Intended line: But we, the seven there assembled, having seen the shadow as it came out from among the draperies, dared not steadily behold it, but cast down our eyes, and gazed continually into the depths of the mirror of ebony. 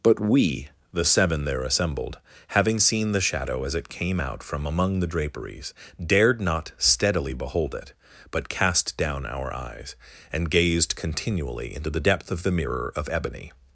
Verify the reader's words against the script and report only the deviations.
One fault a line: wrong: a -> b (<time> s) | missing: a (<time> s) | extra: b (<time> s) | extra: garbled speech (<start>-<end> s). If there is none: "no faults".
wrong: depths -> depth (12.0 s)